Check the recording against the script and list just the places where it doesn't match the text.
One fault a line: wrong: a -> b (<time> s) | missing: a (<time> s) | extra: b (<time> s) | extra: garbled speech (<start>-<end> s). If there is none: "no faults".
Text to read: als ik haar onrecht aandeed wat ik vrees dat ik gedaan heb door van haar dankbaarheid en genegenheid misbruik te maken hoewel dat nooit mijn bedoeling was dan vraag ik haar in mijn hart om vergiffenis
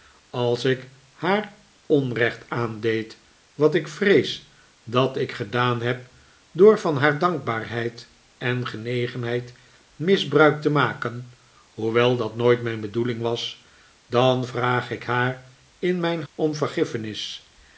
missing: hart (16.2 s)